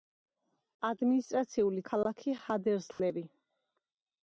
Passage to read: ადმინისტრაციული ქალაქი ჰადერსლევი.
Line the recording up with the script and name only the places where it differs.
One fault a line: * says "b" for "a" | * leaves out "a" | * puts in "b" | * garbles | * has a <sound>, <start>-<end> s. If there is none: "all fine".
* has a dropout, 2.9-3.0 s